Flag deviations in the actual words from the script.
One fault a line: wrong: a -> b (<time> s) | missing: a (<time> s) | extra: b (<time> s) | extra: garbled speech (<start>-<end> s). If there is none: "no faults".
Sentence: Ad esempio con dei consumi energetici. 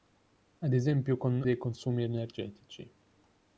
no faults